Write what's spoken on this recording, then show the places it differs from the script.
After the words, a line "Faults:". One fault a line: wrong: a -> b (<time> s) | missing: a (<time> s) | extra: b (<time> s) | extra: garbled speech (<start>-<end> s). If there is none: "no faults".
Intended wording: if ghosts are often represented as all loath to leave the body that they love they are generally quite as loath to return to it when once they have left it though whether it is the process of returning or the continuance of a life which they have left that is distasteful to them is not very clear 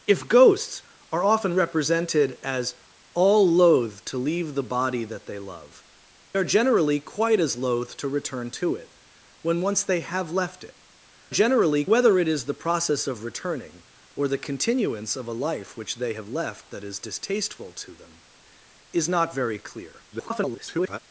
if ghosts are often represented as all loath to leave the body that they love are generally quite as loath to return to it when once they have left it generally whether it is the process of returning or the continuance of a life which they have left that is distasteful to them is not very clear [garbled]
Faults:
missing: they (5.8 s)
wrong: though -> generally (11.3 s)
extra: garbled speech (20.1-21.0 s)